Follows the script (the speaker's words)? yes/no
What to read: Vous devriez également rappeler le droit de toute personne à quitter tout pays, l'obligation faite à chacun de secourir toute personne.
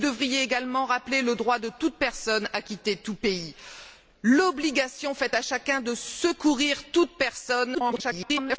no